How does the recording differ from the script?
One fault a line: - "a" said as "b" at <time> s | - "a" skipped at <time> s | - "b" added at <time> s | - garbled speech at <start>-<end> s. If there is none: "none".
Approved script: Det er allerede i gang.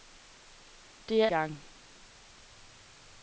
- "allerede" skipped at 1.3 s